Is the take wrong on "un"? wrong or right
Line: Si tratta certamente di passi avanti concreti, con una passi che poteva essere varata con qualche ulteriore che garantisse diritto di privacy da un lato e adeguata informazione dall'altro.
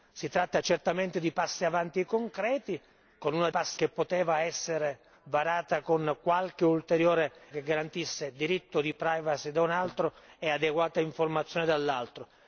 right